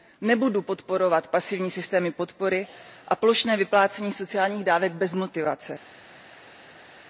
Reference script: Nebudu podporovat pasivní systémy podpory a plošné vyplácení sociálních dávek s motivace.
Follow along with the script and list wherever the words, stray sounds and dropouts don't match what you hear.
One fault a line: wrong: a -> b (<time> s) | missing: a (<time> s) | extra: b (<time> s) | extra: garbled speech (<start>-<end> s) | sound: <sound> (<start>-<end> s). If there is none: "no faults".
wrong: s -> bez (4.9 s)